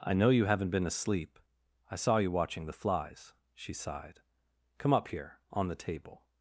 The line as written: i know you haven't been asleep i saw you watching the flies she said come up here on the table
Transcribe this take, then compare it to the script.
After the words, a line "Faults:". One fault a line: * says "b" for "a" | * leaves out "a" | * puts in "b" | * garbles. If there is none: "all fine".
i know you haven't been asleep i saw you watching the flies she sighed come up here on the table
Faults:
* says "sighed" for "said"